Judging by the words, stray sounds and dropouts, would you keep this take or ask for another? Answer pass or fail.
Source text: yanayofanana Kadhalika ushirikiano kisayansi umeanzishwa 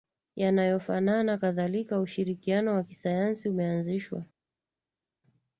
fail